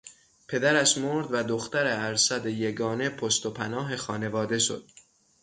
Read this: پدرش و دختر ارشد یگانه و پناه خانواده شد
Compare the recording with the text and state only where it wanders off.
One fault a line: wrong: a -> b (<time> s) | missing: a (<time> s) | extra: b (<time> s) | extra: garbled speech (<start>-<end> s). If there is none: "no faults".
extra: مرد (1.0 s)
extra: پشت (3.1 s)